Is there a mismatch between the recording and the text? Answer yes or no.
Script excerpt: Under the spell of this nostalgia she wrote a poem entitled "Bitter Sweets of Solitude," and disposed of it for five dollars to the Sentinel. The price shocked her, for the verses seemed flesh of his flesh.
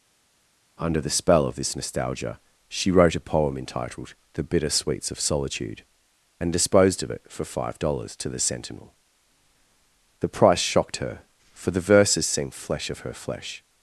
yes